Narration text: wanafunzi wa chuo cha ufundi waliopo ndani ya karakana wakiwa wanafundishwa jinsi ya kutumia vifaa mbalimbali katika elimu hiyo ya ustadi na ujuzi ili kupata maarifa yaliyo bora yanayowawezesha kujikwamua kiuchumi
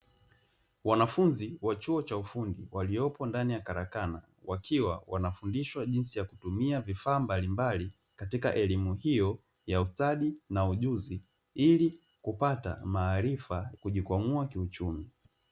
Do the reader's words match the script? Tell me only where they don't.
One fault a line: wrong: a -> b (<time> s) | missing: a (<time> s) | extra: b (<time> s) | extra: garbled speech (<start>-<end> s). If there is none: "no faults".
missing: yaliyo bora yanayowawezesha (13.7 s)